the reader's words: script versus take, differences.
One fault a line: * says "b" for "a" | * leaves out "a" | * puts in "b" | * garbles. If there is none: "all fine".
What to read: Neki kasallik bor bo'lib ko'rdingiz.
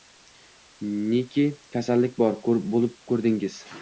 all fine